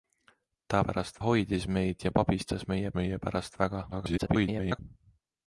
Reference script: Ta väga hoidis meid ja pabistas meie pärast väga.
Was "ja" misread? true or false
false